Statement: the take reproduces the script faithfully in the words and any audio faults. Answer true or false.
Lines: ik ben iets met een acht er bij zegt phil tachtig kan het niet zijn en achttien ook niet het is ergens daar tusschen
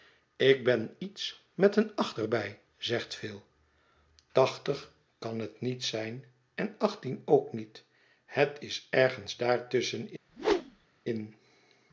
false